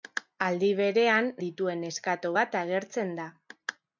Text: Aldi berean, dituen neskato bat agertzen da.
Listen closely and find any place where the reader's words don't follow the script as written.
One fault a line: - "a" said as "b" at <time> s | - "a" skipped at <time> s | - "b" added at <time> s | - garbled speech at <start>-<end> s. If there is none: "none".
none